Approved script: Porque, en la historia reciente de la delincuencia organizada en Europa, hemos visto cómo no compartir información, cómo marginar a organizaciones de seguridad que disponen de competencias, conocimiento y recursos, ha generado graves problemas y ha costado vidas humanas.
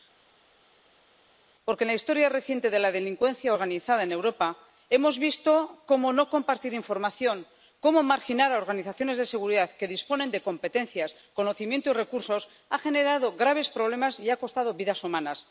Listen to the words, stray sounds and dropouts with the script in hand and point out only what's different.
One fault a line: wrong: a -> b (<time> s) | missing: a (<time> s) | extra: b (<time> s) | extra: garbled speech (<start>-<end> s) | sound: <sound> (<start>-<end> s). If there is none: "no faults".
no faults